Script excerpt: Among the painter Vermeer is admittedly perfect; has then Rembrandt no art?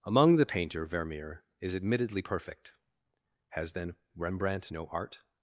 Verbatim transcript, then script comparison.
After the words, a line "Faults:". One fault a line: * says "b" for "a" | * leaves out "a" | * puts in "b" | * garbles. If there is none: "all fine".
Among the painter Vermeer is admittedly perfect; has then Rembrandt no art?
Faults:
all fine